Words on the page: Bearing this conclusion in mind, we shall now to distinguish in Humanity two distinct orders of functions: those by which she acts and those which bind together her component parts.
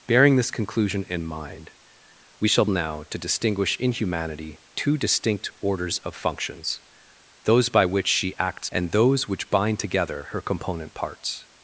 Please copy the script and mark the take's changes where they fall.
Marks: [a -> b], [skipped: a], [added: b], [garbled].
Bearing this conclusion in mind, we shall now to distinguish in Humanity two distinct orders of functions: those by which she acts and those which bind together her component parts.